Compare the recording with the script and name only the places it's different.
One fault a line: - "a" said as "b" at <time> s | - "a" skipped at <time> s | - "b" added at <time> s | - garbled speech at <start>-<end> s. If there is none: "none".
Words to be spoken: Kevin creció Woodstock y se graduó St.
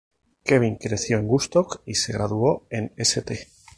- "en" added at 1.2 s
- "en" added at 2.7 s